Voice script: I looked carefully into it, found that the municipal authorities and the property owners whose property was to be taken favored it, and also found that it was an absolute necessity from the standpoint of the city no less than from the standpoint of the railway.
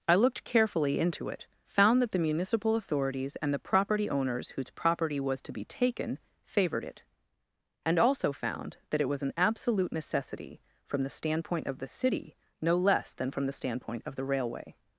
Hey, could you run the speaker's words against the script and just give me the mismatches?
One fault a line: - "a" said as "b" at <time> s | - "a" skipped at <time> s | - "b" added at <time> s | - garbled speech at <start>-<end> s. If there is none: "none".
none